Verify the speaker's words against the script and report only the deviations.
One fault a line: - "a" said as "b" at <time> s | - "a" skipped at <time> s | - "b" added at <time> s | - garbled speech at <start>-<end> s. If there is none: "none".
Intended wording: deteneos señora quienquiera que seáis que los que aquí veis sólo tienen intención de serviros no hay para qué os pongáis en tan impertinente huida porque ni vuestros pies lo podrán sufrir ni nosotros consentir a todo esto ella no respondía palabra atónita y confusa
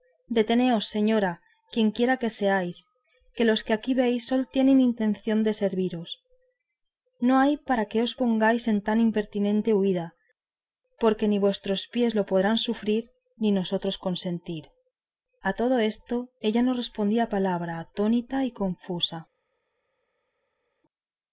none